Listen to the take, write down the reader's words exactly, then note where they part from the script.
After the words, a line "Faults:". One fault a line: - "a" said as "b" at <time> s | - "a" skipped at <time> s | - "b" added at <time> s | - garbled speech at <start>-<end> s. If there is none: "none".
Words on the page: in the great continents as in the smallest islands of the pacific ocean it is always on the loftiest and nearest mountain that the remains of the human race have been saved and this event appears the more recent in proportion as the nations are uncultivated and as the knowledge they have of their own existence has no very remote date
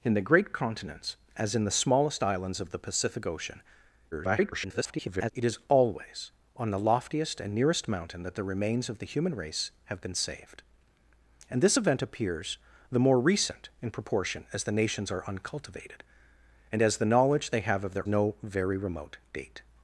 in the great continents as in the smallest islands of the pacific ocean [garbled] it is always on the loftiest and nearest mountain that the remains of the human race have been saved and this event appears the more recent in proportion as the nations are uncultivated and as the knowledge they have of their no very remote date
Faults:
- garbled speech at 4.1-5.3 s
- "own existence has" skipped at 18.1 s